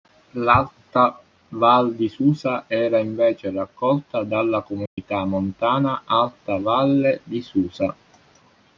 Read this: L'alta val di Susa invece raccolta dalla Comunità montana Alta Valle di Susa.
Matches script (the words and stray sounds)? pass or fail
fail